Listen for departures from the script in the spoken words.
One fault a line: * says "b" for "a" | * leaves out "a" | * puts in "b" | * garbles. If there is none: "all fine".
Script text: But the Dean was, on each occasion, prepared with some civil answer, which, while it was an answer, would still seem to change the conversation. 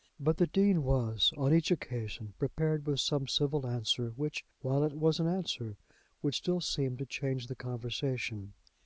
all fine